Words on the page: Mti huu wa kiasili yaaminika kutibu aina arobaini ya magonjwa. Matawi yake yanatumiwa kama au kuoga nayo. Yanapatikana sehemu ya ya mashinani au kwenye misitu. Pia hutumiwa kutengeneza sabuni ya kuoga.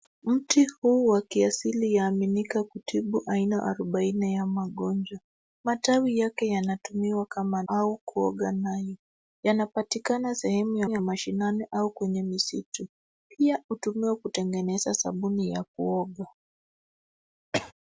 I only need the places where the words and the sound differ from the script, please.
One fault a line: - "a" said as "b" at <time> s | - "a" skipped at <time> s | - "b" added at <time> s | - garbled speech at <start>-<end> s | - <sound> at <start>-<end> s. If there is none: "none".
- cough at 17.5-17.7 s